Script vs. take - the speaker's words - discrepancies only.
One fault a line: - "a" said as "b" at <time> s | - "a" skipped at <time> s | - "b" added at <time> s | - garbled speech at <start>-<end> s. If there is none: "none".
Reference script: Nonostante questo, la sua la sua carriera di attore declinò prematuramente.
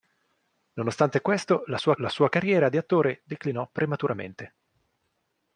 none